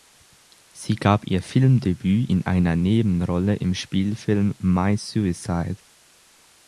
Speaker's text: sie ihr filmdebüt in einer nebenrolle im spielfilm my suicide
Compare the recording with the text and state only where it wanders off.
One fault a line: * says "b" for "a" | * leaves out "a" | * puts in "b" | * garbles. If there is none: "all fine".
* puts in "gab"